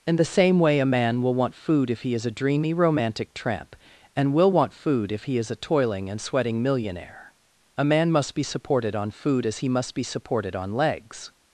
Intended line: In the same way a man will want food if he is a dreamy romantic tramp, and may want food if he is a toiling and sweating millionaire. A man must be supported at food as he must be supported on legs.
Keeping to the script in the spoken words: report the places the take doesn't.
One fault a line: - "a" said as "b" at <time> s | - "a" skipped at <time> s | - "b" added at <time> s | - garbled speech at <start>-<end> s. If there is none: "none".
- "may" said as "will" at 4.3 s
- "at" said as "on" at 9.0 s